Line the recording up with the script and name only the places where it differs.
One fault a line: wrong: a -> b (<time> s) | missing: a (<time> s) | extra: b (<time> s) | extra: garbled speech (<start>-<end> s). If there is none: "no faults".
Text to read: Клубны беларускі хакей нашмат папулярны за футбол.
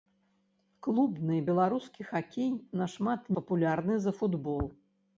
no faults